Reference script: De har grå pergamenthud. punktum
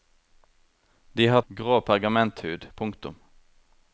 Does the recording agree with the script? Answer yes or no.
yes